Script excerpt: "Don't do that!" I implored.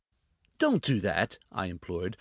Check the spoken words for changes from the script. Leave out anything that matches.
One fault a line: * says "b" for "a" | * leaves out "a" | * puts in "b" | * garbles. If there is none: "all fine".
all fine